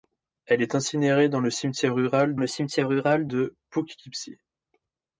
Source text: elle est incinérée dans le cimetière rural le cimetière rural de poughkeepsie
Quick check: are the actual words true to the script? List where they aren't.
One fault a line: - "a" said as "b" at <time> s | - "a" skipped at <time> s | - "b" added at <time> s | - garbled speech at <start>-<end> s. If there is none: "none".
none